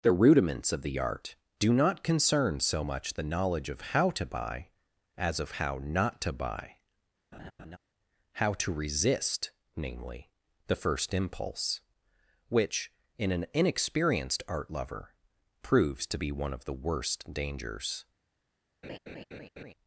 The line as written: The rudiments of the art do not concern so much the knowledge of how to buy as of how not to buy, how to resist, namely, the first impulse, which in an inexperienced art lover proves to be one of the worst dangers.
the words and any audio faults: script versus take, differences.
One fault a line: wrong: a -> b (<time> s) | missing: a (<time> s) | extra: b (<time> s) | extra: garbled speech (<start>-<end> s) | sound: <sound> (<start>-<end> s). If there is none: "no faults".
sound: laugh (7.3-7.8 s)
sound: laugh (18.8-19.7 s)